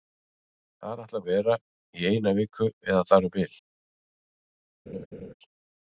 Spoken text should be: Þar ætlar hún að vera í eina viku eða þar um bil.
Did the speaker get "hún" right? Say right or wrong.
wrong